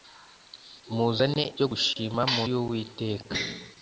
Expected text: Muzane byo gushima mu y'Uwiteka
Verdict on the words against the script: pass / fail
pass